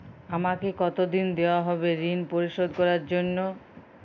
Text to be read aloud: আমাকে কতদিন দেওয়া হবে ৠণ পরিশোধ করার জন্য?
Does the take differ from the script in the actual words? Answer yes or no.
no